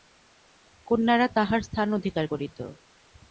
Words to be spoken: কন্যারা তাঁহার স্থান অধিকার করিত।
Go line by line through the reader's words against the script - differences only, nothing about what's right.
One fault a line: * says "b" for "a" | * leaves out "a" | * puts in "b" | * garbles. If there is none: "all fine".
all fine